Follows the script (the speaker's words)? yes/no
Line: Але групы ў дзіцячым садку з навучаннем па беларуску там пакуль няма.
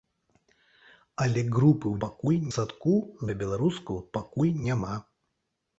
no